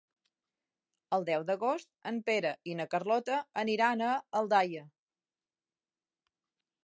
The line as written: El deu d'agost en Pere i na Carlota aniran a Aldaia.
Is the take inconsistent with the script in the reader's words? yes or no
no